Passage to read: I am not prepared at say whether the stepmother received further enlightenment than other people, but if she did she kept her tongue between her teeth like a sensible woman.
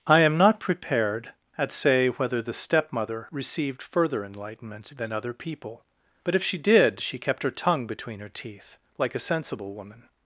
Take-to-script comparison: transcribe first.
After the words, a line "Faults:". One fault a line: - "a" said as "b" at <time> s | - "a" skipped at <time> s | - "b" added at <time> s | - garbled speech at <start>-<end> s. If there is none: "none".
I am not prepared at say whether the stepmother received further enlightenment than other people, but if she did she kept her tongue between her teeth like a sensible woman.
Faults:
none